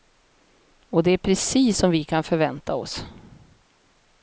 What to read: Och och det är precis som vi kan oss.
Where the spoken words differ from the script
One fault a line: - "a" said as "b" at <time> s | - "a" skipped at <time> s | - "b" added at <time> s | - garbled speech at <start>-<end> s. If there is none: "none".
- "och" skipped at 1.0 s
- "förvänta" added at 2.2 s